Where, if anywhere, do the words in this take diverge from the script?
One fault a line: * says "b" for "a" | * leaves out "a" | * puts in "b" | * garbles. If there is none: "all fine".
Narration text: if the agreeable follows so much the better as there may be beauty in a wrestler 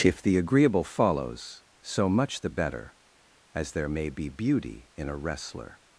all fine